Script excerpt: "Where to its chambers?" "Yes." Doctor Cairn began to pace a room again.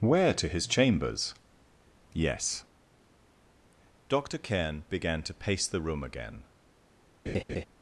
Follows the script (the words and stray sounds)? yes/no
no